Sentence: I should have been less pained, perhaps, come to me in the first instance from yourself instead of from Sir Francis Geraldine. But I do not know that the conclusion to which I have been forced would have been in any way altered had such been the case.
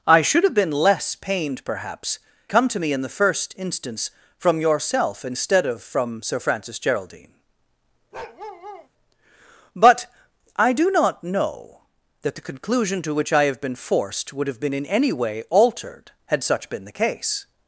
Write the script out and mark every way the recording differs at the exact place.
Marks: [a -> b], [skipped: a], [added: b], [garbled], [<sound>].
I should have been less pained, perhaps, come to me in the first instance from yourself instead of from Sir Francis Geraldine. [bark] But I do not know that the conclusion to which I have been forced would have been in any way altered had such been the case.